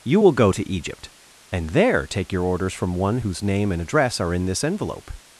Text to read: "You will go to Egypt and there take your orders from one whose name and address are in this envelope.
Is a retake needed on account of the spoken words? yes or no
no